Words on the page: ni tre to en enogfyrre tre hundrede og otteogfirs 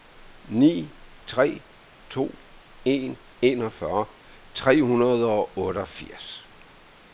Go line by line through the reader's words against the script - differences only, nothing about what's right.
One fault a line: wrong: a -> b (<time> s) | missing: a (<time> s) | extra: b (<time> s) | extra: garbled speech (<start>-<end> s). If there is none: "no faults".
no faults